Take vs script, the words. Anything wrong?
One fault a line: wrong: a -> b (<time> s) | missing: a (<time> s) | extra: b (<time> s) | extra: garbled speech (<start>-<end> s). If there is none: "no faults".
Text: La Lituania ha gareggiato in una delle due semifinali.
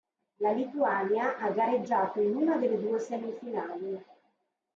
no faults